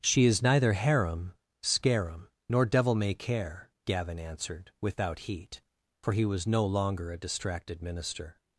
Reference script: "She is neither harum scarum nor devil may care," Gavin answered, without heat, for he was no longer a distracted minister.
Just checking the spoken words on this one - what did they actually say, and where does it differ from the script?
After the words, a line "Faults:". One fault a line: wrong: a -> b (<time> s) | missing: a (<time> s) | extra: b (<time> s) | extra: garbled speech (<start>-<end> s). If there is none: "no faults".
"She is neither harum scarum nor devil may care," Gavin answered, without heat, for he was no longer a distracted minister.
Faults:
no faults